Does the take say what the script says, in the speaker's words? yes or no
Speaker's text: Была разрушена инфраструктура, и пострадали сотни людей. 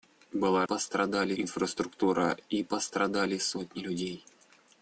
no